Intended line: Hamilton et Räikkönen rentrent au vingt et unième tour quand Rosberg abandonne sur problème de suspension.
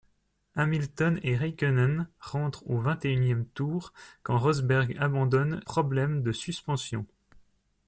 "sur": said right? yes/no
no